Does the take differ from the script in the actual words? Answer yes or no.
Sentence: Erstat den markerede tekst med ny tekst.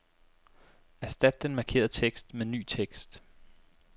no